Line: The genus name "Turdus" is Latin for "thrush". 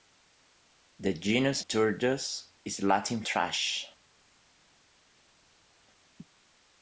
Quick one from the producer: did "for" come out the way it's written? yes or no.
no